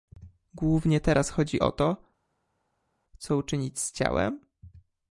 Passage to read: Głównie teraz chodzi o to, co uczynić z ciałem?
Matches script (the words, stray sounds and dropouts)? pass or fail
pass